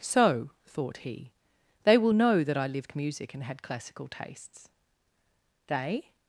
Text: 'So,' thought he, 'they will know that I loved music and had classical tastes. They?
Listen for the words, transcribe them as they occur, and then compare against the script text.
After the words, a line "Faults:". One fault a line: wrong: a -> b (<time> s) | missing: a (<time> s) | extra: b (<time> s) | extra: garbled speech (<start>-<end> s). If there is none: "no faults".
'So,' thought he, 'they will know that I lived music and had classical tastes. They?
Faults:
wrong: loved -> lived (2.7 s)